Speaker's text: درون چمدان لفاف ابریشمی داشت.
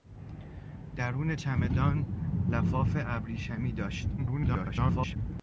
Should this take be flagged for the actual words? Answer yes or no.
yes